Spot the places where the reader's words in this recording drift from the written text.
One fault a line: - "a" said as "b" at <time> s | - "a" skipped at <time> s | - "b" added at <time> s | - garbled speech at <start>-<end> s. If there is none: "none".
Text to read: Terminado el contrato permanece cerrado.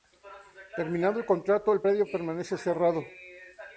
- "el predio" added at 1.7 s